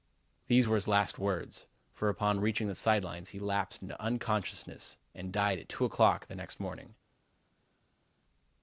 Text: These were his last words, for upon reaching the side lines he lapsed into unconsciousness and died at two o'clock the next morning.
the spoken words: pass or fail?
pass